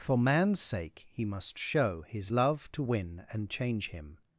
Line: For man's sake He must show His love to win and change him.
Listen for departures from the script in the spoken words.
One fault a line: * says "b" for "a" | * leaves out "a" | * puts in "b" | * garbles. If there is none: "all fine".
all fine